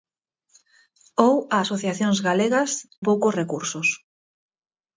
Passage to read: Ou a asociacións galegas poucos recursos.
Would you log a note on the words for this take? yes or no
no